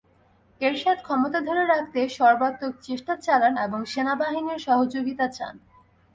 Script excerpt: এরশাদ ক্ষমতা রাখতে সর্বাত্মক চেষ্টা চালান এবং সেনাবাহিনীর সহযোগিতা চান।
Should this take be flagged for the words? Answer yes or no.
yes